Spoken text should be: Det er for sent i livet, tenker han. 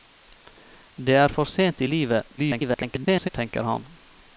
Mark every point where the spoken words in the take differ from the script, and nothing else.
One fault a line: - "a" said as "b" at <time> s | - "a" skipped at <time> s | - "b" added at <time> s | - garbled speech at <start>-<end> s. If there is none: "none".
- garbled speech at 2.4-3.3 s